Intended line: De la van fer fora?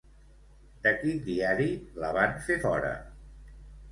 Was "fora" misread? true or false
false